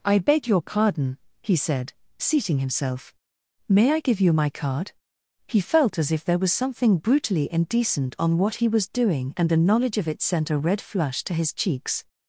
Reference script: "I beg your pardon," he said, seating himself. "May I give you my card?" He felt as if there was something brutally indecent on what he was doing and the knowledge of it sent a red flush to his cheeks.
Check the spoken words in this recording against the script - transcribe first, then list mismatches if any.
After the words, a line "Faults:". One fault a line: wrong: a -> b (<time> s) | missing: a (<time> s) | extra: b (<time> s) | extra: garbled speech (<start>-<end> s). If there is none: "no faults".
"I beg your pardon," he said, seating himself. "May I give you my card?" He felt as if there was something brutally indecent on what he was doing and the knowledge of it sent a red flush to his cheeks.
Faults:
no faults